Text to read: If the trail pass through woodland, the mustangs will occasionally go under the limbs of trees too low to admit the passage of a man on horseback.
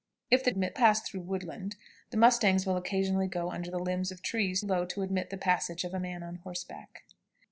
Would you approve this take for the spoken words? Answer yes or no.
no